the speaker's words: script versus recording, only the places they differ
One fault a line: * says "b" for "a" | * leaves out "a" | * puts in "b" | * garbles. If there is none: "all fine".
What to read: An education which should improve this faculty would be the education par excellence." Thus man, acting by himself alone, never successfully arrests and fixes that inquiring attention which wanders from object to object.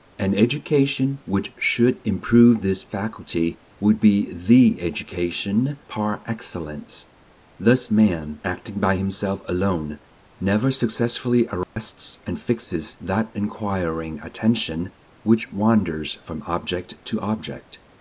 all fine